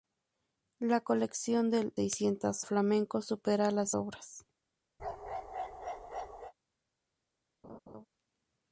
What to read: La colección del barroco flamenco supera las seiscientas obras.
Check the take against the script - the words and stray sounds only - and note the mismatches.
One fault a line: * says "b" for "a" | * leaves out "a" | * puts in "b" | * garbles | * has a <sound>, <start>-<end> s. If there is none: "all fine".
* says "seiscientas" for "barroco"
* leaves out "seiscientas"
* has a bark, 5.0-6.5 s
* has a laugh, 7.6-8.1 s